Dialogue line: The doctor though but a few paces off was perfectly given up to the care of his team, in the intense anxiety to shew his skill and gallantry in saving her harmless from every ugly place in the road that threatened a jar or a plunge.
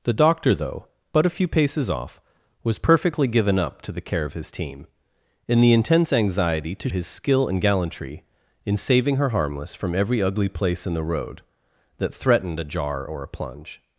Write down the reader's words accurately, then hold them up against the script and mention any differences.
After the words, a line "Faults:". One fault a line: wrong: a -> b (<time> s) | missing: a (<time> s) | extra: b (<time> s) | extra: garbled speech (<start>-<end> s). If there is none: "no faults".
The doctor though but a few paces off was perfectly given up to the care of his team, in the intense anxiety to his skill and gallantry in saving her harmless from every ugly place in the road that threatened a jar or a plunge.
Faults:
missing: shew (6.9 s)